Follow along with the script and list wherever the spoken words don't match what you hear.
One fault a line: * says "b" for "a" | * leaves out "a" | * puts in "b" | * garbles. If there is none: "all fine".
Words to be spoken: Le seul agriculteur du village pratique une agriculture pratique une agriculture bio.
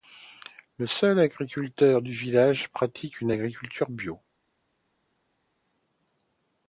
* leaves out "pratique une agriculture"